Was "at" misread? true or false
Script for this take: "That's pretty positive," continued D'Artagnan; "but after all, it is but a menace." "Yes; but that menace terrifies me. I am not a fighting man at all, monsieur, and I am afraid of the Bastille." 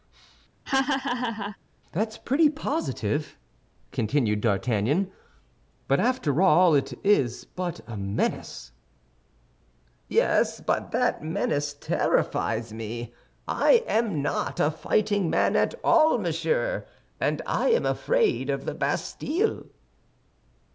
false